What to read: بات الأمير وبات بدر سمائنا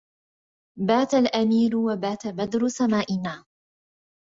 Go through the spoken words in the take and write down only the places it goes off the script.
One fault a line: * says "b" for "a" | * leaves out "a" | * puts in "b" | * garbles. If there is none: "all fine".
all fine